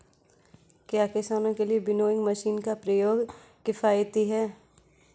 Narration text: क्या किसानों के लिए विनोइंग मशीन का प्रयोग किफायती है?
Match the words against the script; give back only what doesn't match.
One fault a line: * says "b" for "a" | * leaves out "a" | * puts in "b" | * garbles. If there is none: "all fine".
all fine